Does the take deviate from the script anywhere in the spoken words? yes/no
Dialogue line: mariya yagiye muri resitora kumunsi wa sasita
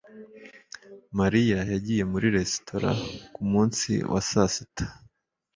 no